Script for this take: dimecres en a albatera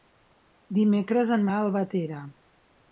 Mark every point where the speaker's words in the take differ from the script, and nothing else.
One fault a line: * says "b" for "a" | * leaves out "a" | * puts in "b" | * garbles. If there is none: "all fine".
all fine